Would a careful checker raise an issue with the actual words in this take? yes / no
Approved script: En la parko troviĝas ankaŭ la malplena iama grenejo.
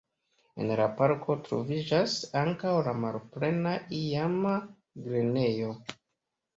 no